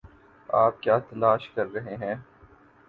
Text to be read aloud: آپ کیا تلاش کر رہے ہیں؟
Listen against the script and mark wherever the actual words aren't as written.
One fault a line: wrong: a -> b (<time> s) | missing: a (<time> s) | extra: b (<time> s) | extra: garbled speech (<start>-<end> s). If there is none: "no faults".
no faults